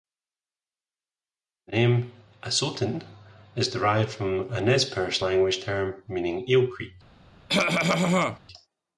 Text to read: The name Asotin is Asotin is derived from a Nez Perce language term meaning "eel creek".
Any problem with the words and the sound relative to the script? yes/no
yes